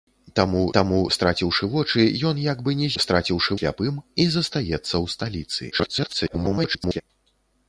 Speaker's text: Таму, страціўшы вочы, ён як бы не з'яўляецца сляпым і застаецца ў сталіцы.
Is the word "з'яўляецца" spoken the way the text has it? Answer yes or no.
no